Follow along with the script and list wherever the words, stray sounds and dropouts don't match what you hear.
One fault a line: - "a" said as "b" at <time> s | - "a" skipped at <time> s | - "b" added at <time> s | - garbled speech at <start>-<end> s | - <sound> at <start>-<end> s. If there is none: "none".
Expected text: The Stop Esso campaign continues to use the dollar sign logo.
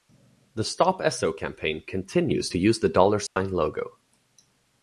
- dropout at 3.3-3.4 s